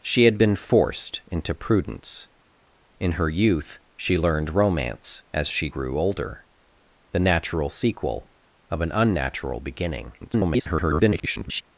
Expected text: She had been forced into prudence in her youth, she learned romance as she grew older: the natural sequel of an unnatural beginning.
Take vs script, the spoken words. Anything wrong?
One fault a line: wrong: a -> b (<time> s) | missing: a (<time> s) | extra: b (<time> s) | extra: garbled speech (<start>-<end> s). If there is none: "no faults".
extra: garbled speech (10.2-11.6 s)